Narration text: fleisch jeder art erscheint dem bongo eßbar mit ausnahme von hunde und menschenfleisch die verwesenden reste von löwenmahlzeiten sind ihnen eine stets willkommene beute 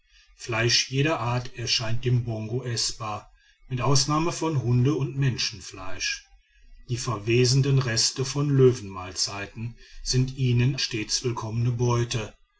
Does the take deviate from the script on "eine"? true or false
true